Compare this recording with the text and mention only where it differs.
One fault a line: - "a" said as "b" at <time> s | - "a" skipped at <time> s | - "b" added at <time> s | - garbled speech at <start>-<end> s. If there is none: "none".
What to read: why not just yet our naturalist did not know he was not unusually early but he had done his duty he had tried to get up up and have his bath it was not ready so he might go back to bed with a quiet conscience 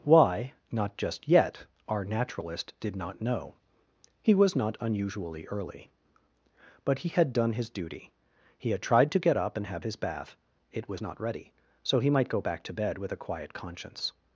- "up" skipped at 9.6 s